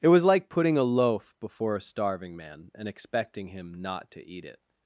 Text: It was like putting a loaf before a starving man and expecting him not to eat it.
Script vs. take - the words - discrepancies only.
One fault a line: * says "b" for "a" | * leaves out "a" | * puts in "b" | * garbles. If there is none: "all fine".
all fine